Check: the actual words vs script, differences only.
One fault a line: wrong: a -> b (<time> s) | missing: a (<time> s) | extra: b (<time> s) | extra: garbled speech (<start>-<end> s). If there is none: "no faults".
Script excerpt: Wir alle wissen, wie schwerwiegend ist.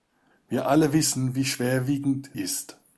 no faults